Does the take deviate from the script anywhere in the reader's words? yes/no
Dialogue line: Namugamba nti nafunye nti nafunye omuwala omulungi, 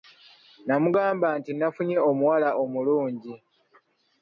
yes